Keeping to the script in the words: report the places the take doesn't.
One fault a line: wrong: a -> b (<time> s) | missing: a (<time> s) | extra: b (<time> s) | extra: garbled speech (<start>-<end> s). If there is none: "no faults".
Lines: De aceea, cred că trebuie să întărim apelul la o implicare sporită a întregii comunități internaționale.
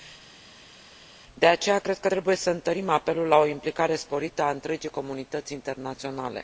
no faults